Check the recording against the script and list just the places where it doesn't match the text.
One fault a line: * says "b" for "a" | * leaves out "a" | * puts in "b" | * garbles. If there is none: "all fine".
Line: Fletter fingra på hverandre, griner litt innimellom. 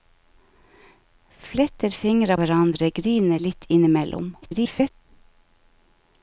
* leaves out "på"
* garbles